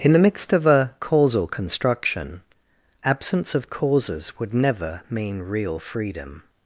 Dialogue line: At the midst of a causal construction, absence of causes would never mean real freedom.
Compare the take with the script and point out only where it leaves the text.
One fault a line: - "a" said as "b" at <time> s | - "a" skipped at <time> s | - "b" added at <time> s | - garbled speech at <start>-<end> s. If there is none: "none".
- "At" said as "In" at 0.0 s